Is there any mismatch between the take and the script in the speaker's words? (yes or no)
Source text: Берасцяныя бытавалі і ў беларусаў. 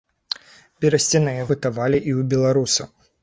no